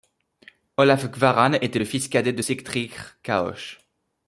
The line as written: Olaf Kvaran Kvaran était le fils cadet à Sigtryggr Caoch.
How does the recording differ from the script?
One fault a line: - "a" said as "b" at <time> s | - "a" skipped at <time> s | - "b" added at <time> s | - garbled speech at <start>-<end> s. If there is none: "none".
- "Kvaran" skipped at 1.5 s
- "à" said as "de" at 2.3 s